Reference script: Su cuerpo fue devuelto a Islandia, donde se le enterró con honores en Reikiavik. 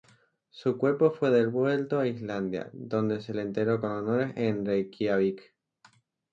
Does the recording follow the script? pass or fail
pass